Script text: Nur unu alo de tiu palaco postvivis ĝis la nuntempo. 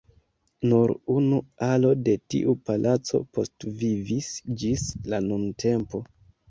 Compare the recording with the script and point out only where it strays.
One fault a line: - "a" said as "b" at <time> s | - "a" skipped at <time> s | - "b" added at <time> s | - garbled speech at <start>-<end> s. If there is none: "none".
none